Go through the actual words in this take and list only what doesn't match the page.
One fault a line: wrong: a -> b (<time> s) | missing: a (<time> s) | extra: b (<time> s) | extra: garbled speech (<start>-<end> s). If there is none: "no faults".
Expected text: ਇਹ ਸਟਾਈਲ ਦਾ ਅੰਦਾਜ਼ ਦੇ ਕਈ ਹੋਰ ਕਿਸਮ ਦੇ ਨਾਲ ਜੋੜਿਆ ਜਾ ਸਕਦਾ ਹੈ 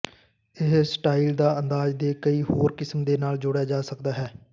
no faults